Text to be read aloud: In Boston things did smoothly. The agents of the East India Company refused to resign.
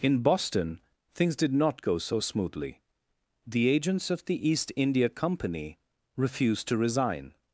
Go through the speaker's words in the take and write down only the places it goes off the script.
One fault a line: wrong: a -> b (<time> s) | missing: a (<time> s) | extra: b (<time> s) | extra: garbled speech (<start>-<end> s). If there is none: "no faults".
extra: not go so (1.5 s)